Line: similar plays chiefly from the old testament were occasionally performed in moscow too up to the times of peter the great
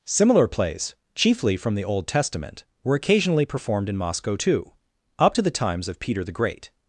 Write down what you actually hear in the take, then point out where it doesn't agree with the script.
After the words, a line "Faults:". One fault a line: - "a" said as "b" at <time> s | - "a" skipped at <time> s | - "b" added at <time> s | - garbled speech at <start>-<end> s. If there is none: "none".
similar plays chiefly from the old testament were occasionally performed in moscow too up to the times of peter the great
Faults:
none